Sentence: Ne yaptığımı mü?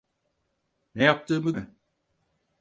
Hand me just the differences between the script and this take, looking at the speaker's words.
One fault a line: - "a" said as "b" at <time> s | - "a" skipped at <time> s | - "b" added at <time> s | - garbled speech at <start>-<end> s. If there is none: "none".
none